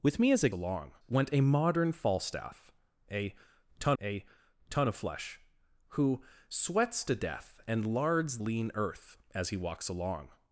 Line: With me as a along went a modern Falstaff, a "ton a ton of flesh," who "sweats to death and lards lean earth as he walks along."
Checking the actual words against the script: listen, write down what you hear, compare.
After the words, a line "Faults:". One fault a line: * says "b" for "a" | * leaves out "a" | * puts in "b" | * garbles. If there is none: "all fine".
With me as a along went a modern Falstaff, a "ton a ton of flesh," who "sweats to death and lards lean earth as he walks along."
Faults:
all fine